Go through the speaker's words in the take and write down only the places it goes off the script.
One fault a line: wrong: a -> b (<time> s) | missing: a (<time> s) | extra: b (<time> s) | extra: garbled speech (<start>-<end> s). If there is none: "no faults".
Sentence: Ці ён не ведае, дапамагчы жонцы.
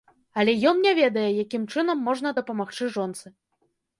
wrong: Ці -> Але (0.4 s)
extra: якім чынам можна (1.4 s)